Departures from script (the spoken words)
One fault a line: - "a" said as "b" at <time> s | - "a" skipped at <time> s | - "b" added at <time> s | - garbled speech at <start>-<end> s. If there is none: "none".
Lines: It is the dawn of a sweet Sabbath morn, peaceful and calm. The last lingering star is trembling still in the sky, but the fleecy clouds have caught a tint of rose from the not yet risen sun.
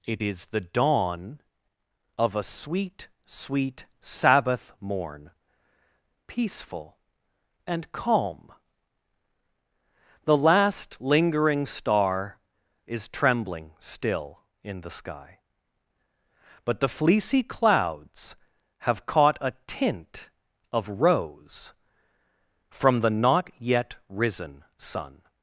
- "sweet" added at 3.2 s